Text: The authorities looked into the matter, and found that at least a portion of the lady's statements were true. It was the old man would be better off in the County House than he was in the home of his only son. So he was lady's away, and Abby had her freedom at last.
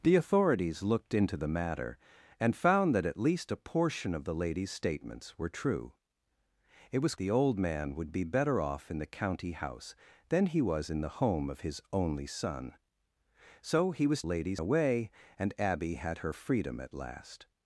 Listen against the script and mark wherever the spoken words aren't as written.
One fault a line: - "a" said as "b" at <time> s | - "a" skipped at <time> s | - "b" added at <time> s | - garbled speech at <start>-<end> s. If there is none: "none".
none